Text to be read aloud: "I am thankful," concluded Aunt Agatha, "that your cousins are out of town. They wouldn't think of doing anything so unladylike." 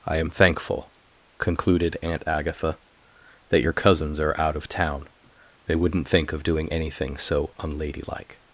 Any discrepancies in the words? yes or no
no